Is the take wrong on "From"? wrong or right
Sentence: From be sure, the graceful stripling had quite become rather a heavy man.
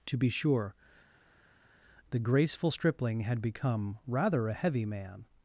wrong